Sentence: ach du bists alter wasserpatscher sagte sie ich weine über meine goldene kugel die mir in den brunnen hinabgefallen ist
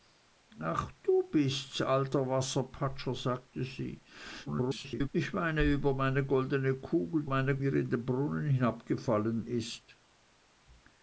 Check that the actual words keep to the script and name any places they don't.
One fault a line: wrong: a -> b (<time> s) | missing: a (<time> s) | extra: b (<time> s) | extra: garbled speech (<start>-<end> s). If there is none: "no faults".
extra: garbled speech (4.5-5.1 s)
wrong: die -> meine (7.3 s)